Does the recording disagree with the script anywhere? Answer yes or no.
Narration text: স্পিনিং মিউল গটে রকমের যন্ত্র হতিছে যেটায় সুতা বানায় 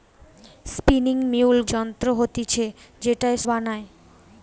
yes